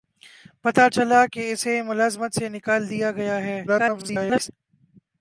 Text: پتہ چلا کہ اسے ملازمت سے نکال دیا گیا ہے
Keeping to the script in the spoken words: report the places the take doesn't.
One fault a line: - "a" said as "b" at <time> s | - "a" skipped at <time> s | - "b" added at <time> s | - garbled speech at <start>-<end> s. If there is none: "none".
- garbled speech at 3.7-4.5 s